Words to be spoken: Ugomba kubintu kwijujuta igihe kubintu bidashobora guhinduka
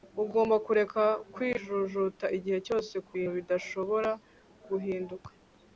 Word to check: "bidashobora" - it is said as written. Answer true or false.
true